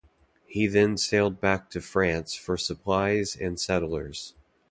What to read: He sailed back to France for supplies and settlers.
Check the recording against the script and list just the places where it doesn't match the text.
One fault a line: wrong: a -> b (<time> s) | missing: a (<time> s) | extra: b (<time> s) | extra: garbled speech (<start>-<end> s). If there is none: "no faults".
extra: then (0.7 s)